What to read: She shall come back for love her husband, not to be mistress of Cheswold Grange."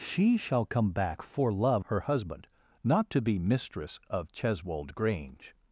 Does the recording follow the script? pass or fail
pass